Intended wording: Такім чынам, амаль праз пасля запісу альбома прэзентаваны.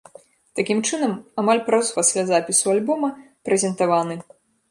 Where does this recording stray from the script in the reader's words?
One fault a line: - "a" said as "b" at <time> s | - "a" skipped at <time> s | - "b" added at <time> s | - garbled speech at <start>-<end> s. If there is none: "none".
none